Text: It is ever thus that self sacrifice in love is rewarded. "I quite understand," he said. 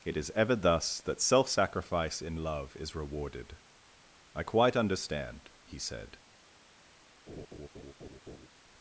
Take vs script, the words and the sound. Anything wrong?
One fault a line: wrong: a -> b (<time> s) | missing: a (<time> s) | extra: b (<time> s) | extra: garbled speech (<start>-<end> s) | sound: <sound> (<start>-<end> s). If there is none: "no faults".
sound: laugh (7.3-8.5 s)